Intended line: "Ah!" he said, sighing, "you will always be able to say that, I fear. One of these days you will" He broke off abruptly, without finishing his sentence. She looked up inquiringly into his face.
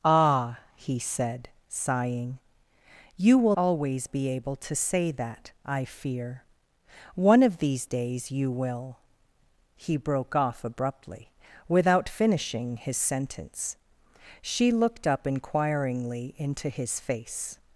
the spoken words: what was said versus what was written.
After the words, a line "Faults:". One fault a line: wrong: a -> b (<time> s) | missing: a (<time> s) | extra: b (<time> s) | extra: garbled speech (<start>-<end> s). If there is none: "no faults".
"Ah!" he said, sighing, "you will always be able to say that, I fear. One of these days you will" He broke off abruptly, without finishing his sentence. She looked up inquiringly into his face.
Faults:
no faults